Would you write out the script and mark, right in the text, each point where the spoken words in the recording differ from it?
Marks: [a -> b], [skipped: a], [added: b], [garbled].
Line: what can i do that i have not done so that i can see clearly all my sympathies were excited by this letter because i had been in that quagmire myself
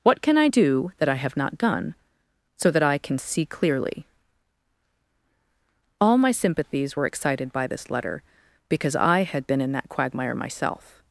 what can i do that i have not done so that i can see clearly all my sympathies were excited by this letter because i had been in that quagmire myself